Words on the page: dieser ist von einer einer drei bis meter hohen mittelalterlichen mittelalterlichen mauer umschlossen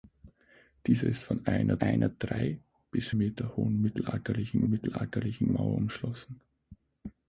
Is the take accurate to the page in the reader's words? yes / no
yes